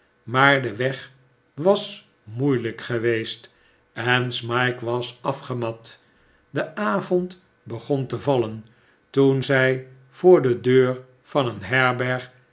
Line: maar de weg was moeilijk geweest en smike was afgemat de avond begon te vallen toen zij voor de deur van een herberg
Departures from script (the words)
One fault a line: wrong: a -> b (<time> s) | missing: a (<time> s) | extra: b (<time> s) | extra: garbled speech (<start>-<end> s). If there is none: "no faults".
no faults